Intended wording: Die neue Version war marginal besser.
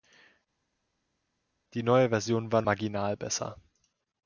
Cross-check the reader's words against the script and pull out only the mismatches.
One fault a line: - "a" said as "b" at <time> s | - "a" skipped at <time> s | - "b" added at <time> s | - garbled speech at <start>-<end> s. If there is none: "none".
none